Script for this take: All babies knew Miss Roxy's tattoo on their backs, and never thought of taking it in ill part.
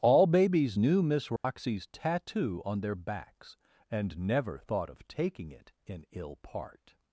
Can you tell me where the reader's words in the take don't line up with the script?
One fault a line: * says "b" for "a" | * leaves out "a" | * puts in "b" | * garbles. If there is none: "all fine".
all fine